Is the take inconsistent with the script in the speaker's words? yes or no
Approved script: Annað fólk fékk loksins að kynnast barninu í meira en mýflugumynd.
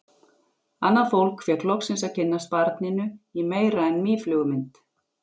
no